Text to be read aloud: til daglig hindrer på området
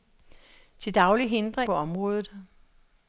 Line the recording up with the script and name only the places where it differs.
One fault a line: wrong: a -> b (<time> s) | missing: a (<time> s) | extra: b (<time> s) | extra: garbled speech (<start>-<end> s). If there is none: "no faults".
no faults